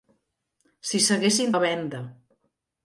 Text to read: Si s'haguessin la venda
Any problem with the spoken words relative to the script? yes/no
no